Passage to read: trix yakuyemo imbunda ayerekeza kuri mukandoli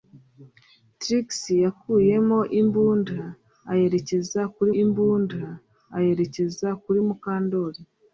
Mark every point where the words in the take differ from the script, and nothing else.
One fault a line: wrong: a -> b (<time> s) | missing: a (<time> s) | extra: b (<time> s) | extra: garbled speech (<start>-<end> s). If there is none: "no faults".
extra: imbunda ayerekeza kuri (4.8 s)